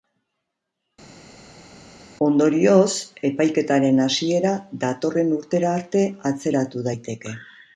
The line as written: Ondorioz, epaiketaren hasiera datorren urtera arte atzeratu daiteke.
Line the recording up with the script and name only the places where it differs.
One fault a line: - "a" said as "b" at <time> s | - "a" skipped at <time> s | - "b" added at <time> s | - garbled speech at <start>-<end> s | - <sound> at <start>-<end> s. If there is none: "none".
none